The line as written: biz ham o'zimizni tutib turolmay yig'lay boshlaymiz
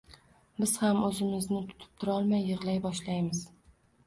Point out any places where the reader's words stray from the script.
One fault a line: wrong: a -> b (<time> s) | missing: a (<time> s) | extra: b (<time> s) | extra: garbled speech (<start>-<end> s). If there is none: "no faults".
no faults